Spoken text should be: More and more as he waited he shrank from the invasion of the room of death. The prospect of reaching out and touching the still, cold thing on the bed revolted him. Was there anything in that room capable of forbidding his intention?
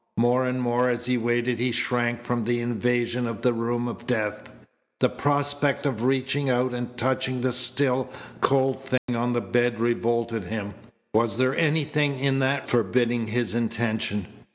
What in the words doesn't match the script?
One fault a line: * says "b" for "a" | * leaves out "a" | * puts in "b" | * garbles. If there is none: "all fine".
* leaves out "room capable of"